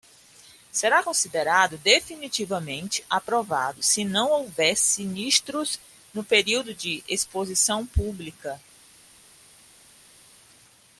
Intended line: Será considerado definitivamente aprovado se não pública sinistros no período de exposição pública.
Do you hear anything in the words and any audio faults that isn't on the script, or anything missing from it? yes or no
yes